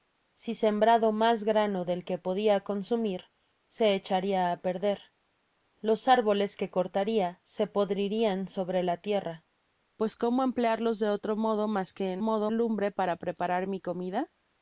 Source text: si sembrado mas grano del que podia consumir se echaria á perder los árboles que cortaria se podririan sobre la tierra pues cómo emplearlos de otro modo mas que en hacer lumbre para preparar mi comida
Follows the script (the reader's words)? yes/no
no